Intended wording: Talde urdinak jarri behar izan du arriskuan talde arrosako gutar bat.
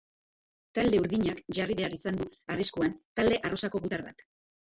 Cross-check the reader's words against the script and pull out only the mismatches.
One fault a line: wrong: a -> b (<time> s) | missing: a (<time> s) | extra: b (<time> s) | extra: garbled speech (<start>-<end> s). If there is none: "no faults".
no faults